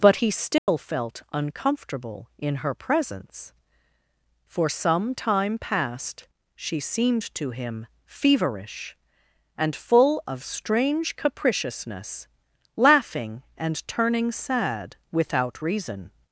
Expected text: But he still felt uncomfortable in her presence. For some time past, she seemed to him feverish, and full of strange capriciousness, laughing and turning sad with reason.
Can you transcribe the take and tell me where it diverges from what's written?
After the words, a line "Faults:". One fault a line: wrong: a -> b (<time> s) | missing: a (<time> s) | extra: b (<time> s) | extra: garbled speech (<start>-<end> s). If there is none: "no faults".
But he still felt uncomfortable in her presence. For some time past, she seemed to him feverish, and full of strange capriciousness, laughing and turning sad without reason.
Faults:
wrong: with -> without (15.1 s)